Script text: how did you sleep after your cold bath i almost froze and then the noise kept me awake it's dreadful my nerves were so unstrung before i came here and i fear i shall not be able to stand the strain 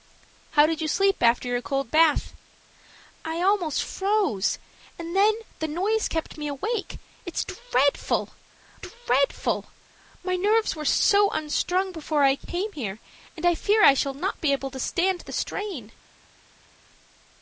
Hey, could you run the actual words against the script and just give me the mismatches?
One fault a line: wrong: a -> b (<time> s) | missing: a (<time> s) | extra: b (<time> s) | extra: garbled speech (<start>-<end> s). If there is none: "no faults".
extra: dreadful (8.8 s)